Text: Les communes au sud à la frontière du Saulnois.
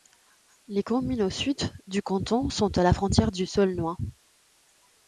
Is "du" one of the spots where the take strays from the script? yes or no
no